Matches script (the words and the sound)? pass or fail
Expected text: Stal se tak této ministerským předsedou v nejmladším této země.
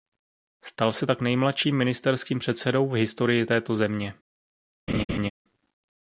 fail